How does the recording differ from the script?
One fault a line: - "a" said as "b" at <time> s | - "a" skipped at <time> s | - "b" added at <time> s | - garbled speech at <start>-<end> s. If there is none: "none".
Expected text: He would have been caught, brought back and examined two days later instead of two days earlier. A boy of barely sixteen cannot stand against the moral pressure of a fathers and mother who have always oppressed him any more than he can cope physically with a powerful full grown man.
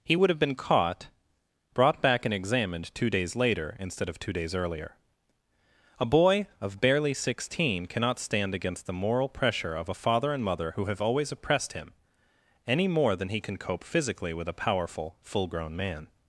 - "fathers" said as "father" at 9.9 s